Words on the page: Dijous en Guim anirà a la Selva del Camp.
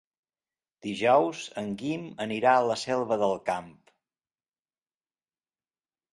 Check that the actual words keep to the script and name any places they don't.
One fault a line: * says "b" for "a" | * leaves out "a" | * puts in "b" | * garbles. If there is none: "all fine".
all fine